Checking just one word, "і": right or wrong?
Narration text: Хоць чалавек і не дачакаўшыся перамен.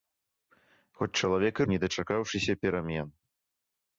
right